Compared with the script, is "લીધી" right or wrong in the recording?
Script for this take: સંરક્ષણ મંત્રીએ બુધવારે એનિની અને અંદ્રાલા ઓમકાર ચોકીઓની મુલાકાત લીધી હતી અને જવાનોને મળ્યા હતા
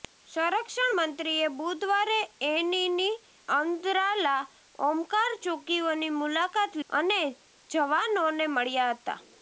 wrong